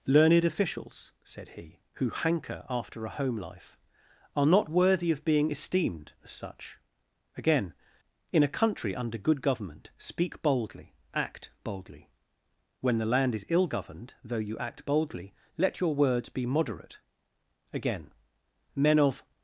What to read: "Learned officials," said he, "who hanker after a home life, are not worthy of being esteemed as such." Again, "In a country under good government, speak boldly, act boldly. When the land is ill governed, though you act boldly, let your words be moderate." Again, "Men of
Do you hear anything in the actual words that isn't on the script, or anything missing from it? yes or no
no